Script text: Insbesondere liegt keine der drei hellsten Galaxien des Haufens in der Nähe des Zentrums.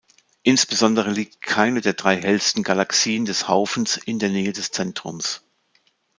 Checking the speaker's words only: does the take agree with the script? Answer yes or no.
yes